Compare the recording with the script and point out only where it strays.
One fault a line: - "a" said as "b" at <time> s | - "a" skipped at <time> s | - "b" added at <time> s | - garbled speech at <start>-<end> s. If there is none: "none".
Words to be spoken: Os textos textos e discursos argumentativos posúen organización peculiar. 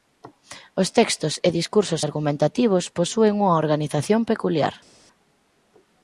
- "textos" skipped at 1.3 s
- "unha" added at 3.4 s